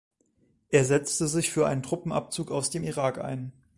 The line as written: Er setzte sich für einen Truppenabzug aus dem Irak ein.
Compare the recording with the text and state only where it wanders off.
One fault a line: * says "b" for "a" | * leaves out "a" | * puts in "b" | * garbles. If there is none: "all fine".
all fine